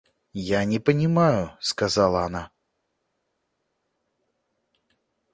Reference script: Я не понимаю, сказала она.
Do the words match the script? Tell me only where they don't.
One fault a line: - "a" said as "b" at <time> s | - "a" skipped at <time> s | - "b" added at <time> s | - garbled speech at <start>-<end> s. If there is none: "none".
none